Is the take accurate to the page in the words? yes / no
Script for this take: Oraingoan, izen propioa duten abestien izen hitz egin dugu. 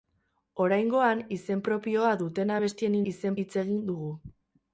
yes